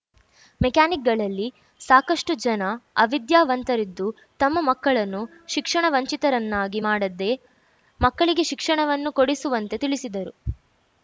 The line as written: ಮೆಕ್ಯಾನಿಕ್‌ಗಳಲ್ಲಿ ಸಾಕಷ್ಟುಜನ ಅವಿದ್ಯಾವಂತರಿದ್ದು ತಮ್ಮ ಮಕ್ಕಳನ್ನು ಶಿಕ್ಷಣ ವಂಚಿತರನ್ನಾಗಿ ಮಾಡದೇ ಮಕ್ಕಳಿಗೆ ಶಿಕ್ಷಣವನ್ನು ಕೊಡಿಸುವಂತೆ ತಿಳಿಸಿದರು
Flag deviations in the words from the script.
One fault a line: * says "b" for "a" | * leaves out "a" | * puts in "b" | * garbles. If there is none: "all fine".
all fine